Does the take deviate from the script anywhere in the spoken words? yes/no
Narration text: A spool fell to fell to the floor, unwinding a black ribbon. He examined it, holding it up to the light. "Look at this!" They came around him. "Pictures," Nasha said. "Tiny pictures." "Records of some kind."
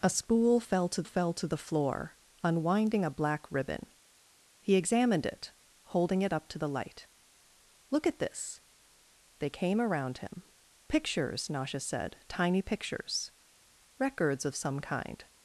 no